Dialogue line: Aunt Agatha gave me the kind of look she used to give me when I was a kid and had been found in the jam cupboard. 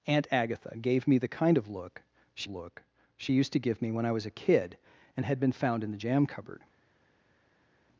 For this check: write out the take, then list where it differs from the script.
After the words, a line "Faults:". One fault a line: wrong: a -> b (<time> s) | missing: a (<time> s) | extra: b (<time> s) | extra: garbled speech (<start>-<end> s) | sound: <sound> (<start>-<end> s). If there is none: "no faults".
Aunt Agatha gave me the kind of look she look she used to give me when I was a kid and had been found in the jam cupboard.
Faults:
extra: look she (2.5 s)